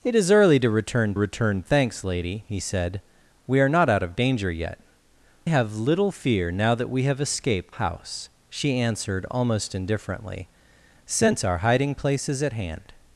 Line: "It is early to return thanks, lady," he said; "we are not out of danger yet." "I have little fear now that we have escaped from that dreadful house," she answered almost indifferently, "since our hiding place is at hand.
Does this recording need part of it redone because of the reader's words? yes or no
yes